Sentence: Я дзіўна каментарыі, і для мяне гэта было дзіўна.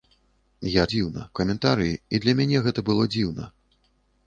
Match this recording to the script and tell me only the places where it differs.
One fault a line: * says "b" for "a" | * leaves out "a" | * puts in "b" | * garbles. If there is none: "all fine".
all fine